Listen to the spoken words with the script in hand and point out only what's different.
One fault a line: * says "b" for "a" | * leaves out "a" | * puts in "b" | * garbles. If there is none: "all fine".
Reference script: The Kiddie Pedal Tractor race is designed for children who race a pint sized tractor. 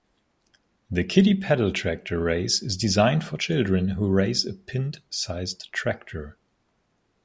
all fine